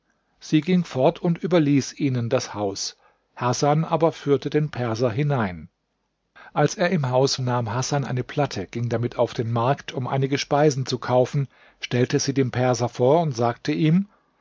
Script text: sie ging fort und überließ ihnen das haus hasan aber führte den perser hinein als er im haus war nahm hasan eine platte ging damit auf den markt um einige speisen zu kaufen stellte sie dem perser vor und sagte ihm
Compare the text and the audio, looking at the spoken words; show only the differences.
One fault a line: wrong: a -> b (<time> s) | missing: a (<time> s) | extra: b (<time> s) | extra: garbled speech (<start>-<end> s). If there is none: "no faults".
missing: war (7.4 s)